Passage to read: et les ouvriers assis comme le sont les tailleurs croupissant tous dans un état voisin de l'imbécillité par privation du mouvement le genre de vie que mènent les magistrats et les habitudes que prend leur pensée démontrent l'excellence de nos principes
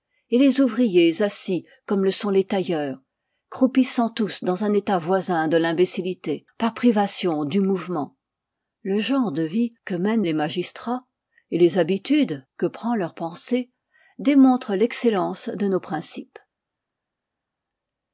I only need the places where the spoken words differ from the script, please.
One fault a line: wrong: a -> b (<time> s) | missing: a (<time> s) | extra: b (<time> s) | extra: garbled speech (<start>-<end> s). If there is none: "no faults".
no faults